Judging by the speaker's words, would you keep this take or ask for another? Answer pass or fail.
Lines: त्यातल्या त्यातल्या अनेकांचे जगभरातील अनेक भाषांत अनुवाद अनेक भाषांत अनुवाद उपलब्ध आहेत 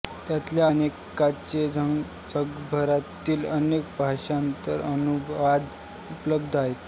fail